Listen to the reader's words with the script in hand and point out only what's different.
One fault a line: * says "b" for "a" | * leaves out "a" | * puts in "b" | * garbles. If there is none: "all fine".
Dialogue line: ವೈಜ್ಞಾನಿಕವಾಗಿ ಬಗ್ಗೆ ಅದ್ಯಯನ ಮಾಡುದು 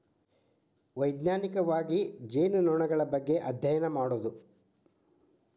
* puts in "ಜೇನುನೊಣಗಳ"